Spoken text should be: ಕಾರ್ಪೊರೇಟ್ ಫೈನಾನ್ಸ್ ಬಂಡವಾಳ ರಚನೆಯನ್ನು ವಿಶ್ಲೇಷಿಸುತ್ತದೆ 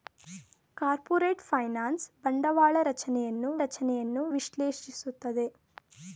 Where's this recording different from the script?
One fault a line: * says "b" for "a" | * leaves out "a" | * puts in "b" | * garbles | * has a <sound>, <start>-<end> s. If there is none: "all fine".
* puts in "ರಚನೆಯನ್ನು"